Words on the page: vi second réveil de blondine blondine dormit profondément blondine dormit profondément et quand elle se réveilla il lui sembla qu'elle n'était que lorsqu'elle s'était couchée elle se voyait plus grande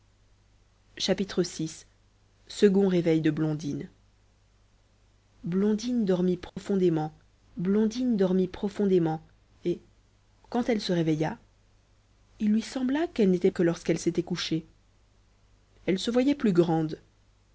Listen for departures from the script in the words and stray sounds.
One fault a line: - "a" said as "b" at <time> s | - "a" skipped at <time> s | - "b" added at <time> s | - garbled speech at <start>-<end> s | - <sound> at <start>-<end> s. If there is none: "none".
- dropout at 6.5-6.6 s